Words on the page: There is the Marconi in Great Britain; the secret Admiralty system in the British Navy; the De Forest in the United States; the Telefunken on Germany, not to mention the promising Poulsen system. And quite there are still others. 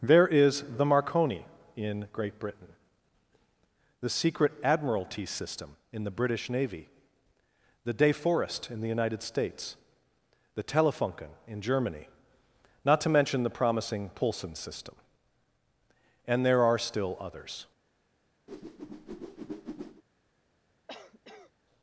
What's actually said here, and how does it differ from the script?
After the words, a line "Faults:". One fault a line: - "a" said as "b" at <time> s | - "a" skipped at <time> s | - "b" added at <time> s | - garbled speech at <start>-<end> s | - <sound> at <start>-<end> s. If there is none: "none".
There is the Marconi in Great Britain; the secret Admiralty system in the British Navy; the De Forest in the United States; the Telefunken in Germany, not to mention the promising Poulsen system. And there are still others.
Faults:
- "on" said as "in" at 11.5 s
- "quite" skipped at 16.5 s
- whoosh at 18.5-20.0 s
- cough at 20.9-21.5 s